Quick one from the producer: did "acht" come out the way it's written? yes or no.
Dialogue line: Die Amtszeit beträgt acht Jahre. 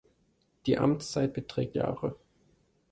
no